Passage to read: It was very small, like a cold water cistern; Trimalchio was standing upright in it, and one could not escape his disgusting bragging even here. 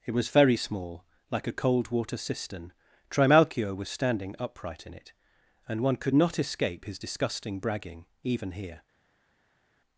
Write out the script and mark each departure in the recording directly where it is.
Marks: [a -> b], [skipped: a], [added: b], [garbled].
It was very small, like a cold water cistern; Trimalchio was standing upright in it, and one could not escape his disgusting bragging even here.